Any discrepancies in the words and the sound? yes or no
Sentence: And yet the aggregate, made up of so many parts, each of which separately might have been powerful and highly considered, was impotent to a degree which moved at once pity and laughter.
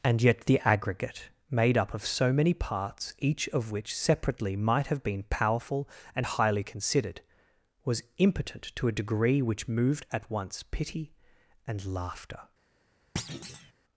yes